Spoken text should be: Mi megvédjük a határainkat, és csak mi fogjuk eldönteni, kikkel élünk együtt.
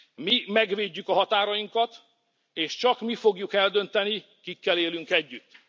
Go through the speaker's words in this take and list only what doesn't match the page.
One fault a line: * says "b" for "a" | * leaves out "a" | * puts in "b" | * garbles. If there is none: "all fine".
all fine